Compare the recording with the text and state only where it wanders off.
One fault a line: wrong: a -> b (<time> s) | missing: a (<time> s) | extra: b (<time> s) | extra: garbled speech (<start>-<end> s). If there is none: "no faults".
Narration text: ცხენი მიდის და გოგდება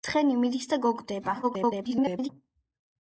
extra: garbled speech (1.4-2.3 s)